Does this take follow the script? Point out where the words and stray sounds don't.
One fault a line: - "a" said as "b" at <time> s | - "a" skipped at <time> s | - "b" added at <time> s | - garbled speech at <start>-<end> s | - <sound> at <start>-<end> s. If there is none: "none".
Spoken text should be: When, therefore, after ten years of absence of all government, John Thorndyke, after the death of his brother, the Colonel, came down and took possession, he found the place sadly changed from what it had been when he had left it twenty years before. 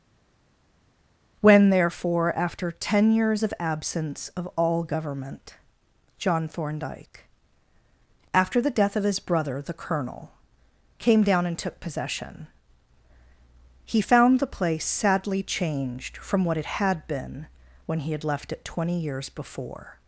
none